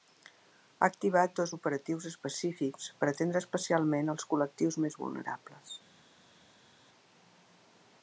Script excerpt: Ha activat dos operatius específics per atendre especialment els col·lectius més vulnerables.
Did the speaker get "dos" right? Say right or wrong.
right